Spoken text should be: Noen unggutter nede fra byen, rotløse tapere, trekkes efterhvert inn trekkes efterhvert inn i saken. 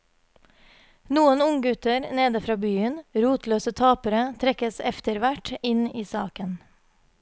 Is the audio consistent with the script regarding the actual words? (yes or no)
no